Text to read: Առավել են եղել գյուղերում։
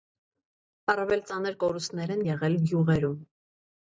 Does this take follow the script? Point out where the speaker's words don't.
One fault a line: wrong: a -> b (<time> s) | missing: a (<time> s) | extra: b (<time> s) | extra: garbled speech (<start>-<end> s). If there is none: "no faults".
extra: ծանր կորուստներ (1.3 s)